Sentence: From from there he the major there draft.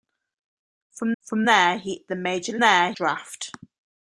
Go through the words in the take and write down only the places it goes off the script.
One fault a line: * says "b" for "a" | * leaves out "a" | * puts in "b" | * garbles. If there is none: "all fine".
all fine